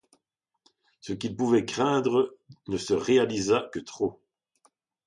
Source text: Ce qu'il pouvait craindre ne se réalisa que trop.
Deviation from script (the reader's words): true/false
false